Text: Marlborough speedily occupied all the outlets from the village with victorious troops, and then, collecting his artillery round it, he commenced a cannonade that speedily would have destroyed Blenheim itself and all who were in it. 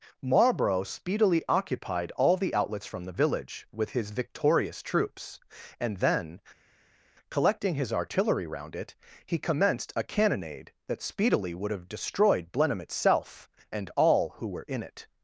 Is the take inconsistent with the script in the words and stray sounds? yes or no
yes